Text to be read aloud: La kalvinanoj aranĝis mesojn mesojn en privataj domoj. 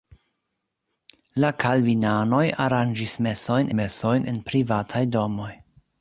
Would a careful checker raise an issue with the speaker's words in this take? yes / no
no